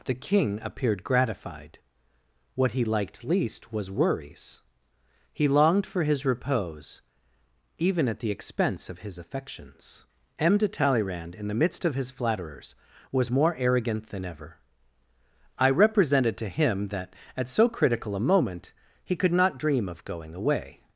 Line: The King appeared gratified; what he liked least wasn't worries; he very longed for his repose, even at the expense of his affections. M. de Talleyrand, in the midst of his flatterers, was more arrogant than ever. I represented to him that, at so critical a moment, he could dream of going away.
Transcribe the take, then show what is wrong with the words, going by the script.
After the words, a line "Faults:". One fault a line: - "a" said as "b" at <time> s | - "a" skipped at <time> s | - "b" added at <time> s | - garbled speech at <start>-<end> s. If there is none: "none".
The King appeared gratified; what he liked least was worries; he longed for his repose, even at the expense of his affections. M. de Talleyrand, in the midst of his flatterers, was more arrogant than ever. I represented to him that, at so critical a moment, he could not dream of going away.
Faults:
- "wasn't" said as "was" at 3.7 s
- "very" skipped at 5.5 s
- "not" added at 19.3 s